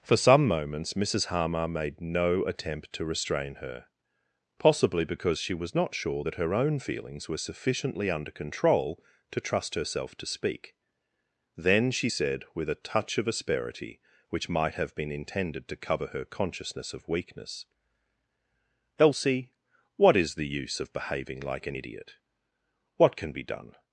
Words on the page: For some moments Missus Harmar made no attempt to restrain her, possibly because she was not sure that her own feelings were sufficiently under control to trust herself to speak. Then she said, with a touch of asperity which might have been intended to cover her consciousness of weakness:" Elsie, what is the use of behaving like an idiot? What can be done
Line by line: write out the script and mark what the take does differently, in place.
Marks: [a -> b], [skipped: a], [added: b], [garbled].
For some moments Missus Harmar made no attempt to restrain her, possibly because she was not sure that her own feelings were sufficiently under control to trust herself to speak. Then she said, with a touch of asperity which might have been intended to cover her consciousness of weakness:" Elsie, what is the use of behaving like an idiot? What can be done